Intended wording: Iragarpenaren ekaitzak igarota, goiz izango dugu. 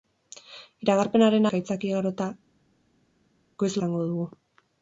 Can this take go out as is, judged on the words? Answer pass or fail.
pass